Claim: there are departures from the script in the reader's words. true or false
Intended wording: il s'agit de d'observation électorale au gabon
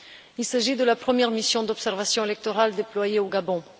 true